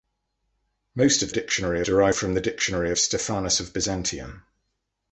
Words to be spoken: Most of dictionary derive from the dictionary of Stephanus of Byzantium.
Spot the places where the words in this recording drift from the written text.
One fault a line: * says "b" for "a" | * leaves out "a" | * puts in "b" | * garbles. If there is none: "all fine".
all fine